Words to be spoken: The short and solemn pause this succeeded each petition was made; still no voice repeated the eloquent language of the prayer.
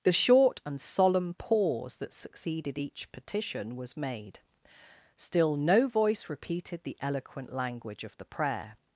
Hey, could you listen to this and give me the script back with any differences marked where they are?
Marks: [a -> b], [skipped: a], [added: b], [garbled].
The short and solemn pause [this -> that] succeeded each petition was made; still no voice repeated the eloquent language of the prayer.